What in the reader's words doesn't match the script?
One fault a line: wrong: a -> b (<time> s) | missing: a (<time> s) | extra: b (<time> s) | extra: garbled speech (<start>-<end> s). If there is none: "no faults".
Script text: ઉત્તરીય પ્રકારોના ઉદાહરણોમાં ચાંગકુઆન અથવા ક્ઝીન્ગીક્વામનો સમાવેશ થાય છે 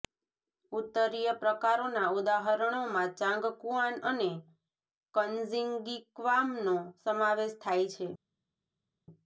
wrong: અથવા -> અને (4.0 s)